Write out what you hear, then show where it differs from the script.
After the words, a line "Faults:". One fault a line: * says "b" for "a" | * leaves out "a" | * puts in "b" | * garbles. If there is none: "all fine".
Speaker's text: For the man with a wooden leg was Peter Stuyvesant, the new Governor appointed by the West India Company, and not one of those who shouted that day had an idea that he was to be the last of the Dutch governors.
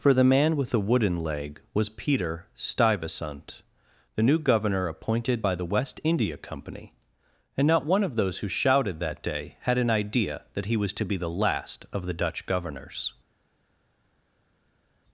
For the man with the wooden leg was Peter Stuyvesant, the new Governor appointed by the West India Company, and not one of those who shouted that day had an idea that he was to be the last of the Dutch governors.
Faults:
* says "the" for "a"